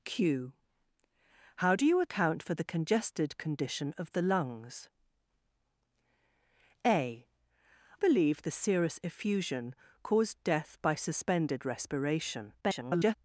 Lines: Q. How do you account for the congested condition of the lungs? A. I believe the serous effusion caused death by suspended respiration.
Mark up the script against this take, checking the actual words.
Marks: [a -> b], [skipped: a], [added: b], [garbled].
Q. How do you account for the congested condition of the lungs? A. [skipped: I] believe the serous effusion caused death by suspended respiration. [garbled]